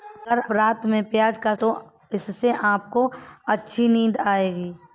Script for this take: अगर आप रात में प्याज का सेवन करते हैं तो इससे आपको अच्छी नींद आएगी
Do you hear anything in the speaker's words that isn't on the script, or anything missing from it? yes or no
yes